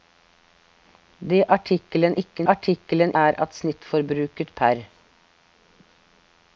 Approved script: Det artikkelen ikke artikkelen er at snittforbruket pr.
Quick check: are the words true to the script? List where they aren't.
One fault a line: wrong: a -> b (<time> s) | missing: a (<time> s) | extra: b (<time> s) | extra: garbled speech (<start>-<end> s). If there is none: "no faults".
no faults